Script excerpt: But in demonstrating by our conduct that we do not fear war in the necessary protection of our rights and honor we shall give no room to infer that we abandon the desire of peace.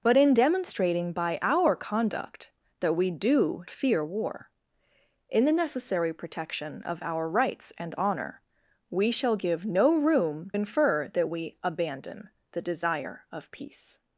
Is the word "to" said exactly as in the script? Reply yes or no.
no